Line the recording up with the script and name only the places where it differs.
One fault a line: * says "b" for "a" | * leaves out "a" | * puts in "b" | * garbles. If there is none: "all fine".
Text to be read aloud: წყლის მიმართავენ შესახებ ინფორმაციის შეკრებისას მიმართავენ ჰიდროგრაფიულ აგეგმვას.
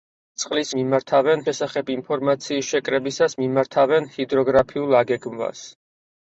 all fine